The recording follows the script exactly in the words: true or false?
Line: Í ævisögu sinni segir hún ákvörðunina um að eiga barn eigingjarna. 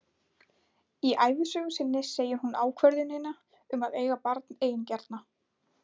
true